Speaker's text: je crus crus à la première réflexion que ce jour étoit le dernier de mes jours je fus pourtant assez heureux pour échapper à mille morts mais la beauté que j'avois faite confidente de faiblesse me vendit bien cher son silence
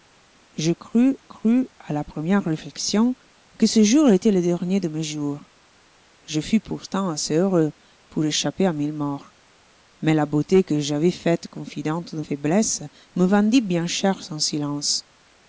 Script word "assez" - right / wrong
right